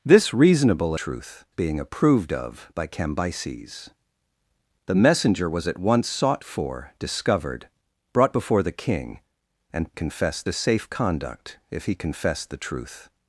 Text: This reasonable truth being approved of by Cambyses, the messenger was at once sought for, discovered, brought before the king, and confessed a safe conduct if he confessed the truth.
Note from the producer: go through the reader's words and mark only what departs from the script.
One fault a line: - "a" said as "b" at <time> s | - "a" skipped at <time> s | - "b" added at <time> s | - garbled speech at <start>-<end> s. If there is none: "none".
none